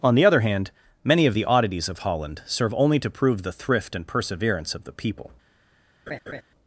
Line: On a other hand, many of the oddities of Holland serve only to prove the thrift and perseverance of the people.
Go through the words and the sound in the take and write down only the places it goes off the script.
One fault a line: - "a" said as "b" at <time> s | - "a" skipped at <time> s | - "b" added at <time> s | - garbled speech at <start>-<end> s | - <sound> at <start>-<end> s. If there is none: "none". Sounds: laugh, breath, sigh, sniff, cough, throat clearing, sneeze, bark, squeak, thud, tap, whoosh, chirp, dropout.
- "a" said as "the" at 0.1 s
- laugh at 6.1-6.4 s